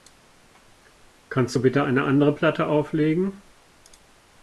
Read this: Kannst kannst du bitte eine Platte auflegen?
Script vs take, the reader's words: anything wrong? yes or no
yes